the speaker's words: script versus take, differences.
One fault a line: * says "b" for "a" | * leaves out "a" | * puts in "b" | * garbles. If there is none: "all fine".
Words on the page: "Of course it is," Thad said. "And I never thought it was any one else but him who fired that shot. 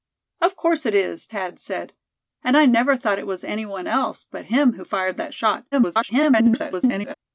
* garbles